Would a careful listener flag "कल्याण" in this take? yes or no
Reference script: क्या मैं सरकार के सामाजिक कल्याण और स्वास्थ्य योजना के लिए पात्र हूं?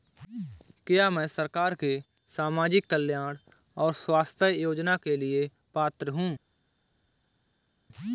no